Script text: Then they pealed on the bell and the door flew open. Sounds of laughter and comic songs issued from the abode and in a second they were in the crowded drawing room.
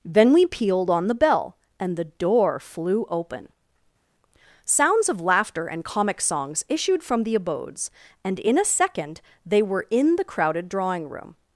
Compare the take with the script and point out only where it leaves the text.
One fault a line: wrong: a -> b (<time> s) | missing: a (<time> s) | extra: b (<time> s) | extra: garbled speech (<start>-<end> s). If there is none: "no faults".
wrong: they -> we (0.3 s)
wrong: abode -> abodes (7.3 s)